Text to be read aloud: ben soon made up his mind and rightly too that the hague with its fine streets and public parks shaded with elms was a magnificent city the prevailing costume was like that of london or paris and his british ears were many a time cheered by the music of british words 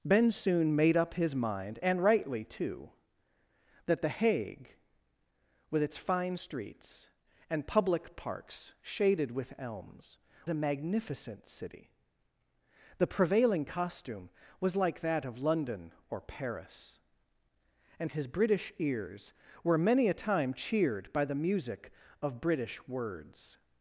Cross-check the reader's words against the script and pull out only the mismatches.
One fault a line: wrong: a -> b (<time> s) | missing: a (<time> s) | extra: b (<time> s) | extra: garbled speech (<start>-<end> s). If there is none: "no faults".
missing: was (10.2 s)